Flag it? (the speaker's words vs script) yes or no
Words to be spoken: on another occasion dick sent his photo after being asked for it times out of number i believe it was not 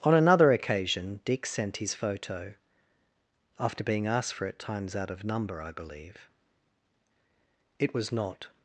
no